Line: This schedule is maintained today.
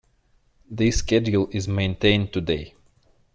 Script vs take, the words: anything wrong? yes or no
no